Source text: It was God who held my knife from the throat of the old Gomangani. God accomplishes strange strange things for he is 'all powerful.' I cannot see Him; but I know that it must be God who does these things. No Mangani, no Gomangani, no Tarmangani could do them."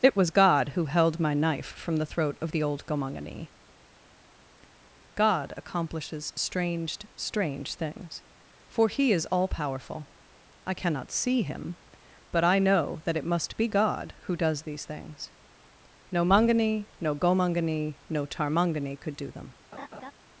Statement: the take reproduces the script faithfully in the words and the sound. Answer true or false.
false